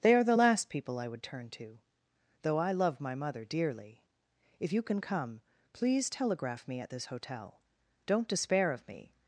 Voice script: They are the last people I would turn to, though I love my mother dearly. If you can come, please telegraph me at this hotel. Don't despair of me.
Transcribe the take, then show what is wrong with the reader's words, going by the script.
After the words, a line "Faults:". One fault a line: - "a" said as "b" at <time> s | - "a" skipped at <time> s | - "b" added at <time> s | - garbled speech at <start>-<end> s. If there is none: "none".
They are the last people I would turn to, though I love my mother dearly. If you can come, please telegraph me at this hotel. Don't despair of me.
Faults:
none